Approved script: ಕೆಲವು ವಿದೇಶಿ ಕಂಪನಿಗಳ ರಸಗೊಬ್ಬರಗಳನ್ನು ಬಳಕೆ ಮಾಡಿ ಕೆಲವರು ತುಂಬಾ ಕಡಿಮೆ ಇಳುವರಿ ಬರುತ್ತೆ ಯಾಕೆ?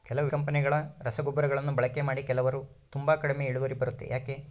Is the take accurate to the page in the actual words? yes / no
no